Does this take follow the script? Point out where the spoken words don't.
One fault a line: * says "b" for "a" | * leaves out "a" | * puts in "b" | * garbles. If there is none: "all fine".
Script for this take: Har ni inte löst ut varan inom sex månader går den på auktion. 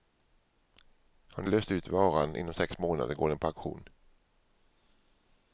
* leaves out "inte"